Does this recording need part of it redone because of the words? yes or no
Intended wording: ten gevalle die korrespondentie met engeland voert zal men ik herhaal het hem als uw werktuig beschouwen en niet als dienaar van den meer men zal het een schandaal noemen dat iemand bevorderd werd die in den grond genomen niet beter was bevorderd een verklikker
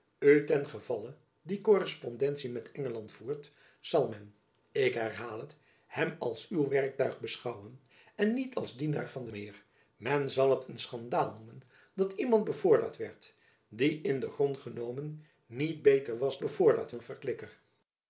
no